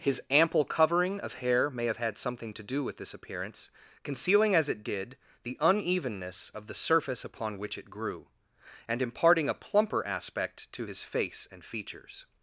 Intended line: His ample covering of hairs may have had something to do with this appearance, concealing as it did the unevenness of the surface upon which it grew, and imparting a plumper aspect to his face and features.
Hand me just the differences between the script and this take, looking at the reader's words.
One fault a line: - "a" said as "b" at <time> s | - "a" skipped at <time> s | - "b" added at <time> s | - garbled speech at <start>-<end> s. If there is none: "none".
- "hairs" said as "hair" at 1.4 s